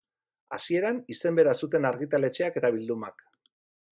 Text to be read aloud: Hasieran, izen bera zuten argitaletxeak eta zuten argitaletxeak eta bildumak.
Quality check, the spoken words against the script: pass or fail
fail